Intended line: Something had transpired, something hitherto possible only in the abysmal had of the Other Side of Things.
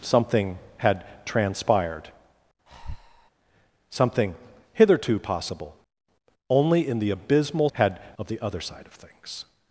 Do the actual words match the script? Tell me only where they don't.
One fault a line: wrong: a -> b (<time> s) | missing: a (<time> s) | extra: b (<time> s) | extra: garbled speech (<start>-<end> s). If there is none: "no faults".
no faults